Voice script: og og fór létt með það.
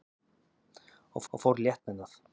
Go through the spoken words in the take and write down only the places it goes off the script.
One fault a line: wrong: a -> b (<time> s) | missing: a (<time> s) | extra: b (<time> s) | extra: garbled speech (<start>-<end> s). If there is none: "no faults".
no faults